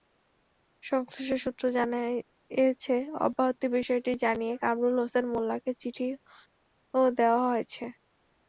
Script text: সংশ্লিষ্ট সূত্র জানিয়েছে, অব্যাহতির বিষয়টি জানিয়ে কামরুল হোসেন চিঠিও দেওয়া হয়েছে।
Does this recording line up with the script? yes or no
no